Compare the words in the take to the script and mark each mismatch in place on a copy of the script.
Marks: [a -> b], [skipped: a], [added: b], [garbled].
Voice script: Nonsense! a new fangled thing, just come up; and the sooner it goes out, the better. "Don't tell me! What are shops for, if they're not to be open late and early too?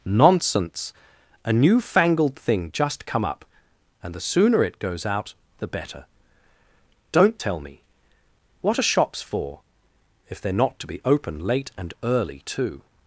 Nonsense! a new fangled thing, just come up; and the sooner it goes out, the better. "Don't tell me! What are shops for, if they're not to be open late and early too?